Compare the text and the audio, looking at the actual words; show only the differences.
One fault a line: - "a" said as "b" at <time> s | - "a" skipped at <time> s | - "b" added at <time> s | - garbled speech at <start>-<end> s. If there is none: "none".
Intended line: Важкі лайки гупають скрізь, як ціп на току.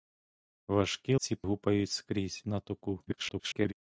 - "лайки" said as "ціп" at 1.2 s
- "як ціп" skipped at 2.4 s
- garbled speech at 3.1-3.7 s